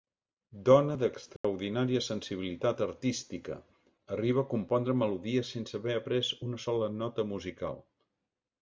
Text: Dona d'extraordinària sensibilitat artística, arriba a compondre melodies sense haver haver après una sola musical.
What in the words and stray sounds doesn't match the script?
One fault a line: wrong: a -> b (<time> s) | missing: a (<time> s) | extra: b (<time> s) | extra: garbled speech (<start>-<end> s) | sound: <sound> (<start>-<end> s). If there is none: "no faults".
sound: dropout (1.4-1.4 s)
missing: haver (6.0 s)
extra: nota (7.0 s)